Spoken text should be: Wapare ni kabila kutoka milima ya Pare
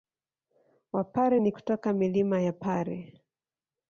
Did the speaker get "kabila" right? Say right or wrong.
wrong